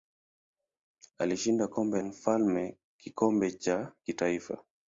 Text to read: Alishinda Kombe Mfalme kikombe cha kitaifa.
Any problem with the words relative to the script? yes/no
no